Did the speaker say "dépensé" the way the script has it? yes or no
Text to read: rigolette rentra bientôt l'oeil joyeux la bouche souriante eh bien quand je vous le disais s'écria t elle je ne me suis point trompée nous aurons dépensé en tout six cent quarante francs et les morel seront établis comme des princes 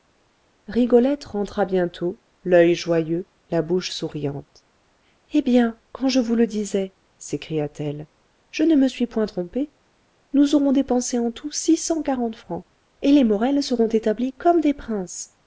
yes